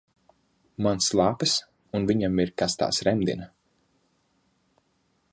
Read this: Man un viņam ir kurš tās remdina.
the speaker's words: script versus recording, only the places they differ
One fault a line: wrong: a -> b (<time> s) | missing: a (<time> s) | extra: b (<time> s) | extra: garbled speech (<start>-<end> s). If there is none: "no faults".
extra: slāpes (1.1 s)
wrong: kurš -> kas (2.6 s)